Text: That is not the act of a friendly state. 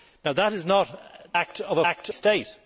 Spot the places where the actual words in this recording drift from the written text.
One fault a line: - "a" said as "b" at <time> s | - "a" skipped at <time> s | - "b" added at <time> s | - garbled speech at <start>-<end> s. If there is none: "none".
- "the" skipped at 0.9 s
- "friendly" said as "act" at 1.8 s